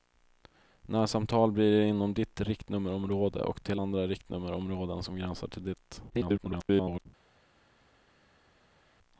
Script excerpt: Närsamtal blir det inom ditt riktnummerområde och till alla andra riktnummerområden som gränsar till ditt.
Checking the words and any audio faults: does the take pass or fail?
fail